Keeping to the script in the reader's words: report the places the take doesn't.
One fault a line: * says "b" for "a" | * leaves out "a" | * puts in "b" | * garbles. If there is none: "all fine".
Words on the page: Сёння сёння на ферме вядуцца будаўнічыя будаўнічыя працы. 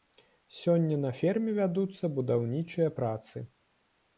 * leaves out "сёння"
* leaves out "будаўнічыя"